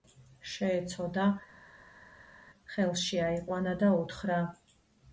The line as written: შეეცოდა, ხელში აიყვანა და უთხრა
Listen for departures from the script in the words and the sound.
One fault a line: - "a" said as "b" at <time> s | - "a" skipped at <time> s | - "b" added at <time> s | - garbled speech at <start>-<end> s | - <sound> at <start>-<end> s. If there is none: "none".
none